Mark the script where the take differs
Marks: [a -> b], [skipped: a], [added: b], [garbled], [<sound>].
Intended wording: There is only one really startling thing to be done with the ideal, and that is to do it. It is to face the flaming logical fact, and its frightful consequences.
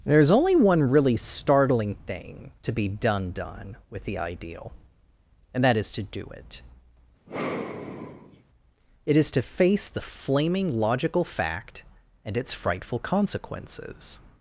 There is only one really startling thing to be done [added: done] with the ideal, and that is to do it. [sigh] It is to face the flaming logical fact, and its frightful consequences.